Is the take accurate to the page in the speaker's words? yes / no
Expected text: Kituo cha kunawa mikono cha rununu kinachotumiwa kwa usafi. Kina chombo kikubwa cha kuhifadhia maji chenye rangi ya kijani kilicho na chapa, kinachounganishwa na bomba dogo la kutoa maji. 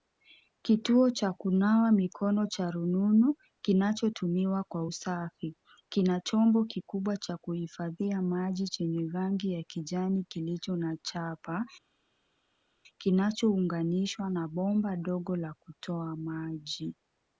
yes